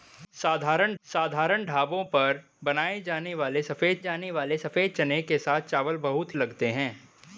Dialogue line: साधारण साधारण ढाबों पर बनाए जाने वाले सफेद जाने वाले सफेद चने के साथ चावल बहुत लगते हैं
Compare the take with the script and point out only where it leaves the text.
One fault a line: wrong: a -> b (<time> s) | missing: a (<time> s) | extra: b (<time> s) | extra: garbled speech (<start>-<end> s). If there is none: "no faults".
no faults